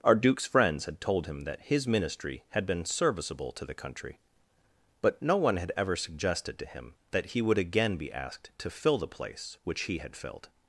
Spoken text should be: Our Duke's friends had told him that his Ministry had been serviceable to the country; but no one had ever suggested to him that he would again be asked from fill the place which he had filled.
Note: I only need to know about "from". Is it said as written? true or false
false